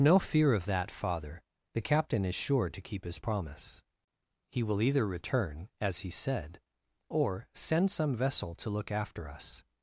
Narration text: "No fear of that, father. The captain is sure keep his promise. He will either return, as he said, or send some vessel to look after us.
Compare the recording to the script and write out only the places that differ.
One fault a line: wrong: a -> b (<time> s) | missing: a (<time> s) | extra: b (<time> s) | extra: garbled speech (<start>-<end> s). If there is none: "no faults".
extra: to (2.7 s)